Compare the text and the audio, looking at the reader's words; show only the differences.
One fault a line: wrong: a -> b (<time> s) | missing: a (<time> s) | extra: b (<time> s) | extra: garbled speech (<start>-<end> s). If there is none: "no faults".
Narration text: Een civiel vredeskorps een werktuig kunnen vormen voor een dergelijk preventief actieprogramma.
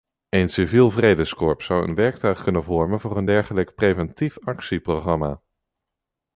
extra: zou (1.6 s)